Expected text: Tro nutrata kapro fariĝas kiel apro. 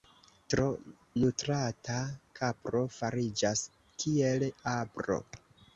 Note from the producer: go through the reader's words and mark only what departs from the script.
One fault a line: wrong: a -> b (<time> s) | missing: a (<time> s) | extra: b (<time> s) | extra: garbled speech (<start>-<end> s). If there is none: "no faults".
no faults